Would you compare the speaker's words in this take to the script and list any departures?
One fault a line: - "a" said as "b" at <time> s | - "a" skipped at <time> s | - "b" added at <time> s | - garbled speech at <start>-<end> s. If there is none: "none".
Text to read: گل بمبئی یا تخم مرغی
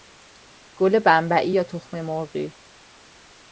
none